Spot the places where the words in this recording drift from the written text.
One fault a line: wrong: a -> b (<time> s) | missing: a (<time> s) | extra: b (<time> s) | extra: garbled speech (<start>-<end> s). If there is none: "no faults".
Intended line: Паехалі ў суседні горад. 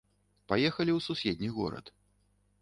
no faults